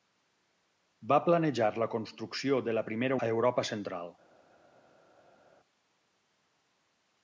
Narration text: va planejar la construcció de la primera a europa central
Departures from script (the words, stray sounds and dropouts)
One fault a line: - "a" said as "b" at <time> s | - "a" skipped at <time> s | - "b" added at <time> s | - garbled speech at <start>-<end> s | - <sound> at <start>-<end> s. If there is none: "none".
none